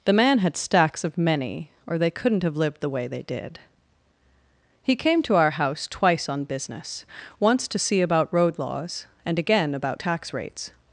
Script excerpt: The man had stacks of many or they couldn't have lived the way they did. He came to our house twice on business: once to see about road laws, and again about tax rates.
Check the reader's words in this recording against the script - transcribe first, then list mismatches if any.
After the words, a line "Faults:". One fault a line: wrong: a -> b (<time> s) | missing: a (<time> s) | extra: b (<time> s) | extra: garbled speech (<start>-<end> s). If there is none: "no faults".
The man had stacks of many or they couldn't have lived the way they did. He came to our house twice on business: once to see about road laws, and again about tax rates.
Faults:
no faults